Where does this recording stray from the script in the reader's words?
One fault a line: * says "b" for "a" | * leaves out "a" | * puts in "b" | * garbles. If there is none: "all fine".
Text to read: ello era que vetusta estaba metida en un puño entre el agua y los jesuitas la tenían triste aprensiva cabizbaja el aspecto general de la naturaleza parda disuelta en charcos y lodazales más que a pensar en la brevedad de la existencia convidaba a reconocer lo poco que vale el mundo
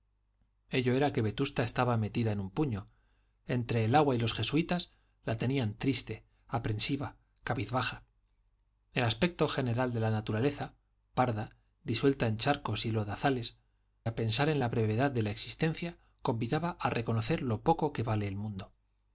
* leaves out "más que"